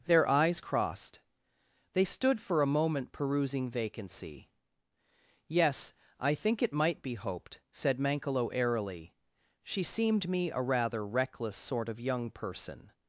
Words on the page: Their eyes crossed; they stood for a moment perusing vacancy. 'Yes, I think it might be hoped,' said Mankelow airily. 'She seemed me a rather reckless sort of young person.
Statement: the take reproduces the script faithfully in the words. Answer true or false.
true